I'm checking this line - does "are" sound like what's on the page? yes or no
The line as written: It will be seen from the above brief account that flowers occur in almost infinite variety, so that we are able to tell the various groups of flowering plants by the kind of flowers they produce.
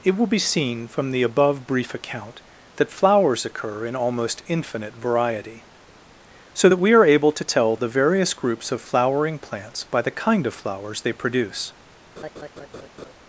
yes